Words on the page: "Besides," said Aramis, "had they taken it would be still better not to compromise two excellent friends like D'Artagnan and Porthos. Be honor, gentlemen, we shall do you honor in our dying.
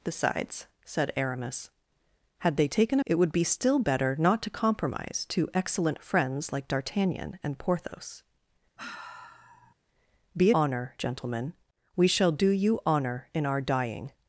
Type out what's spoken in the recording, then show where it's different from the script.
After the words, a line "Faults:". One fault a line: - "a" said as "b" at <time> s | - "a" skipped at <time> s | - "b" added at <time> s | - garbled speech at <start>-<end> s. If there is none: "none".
"Besides," said Aramis, "had they taken it would be still better not to compromise two excellent friends like D'Artagnan and Porthos. Be honor, gentlemen, we shall do you honor in our dying.
Faults:
none